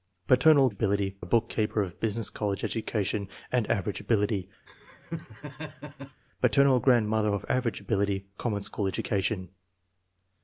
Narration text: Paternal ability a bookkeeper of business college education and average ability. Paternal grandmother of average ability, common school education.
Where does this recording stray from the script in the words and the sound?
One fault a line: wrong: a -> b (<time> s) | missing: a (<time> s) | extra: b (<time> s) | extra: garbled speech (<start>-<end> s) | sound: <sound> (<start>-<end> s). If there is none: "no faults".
sound: laugh (4.7-6.2 s)